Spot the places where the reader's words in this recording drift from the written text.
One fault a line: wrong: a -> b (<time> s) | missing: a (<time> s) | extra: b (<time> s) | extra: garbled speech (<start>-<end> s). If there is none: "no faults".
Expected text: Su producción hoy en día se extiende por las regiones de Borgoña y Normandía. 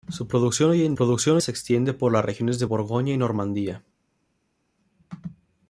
wrong: día -> producción (0.9 s)